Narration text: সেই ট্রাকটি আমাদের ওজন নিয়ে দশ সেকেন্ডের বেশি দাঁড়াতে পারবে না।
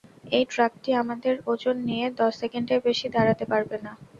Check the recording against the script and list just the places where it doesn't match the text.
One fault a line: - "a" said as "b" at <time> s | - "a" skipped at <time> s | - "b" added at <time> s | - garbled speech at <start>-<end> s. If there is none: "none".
- "সেই" said as "এই" at 0.3 s